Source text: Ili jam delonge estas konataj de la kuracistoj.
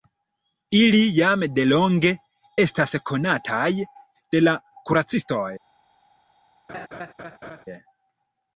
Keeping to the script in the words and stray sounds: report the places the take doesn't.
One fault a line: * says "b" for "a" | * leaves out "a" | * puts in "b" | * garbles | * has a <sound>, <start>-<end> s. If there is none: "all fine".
* has a laugh, 6.7-7.7 s